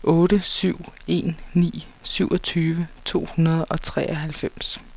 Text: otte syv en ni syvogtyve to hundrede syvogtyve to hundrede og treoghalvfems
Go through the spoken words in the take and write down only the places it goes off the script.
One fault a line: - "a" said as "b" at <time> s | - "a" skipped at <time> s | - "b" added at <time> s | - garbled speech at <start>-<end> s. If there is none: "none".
- "syvogtyve to hundrede" skipped at 3.6 s